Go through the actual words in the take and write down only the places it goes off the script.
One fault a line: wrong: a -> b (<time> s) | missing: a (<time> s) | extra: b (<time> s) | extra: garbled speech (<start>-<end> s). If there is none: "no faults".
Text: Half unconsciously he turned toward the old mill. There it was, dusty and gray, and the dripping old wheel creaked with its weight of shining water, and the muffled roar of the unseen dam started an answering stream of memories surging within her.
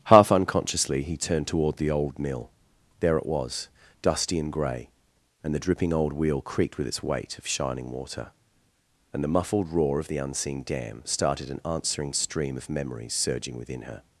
no faults